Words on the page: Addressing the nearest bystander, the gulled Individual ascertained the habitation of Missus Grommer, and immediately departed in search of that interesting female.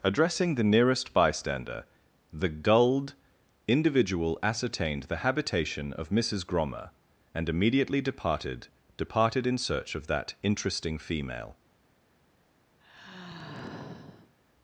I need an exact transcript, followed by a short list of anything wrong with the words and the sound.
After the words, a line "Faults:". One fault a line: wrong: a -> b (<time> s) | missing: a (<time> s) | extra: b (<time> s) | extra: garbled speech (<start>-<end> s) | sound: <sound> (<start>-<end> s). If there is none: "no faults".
Addressing the nearest bystander, the gulled Individual ascertained the habitation of Missus Grommer, and immediately departed departed in search of that interesting female.
Faults:
extra: departed (9.0 s)
sound: sigh (12.8-14.4 s)